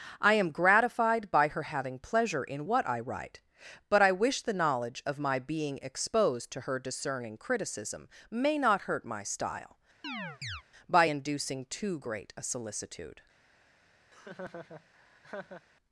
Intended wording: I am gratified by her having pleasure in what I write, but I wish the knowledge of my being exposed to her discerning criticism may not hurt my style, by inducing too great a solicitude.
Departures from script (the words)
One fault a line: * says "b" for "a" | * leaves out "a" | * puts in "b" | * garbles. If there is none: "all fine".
all fine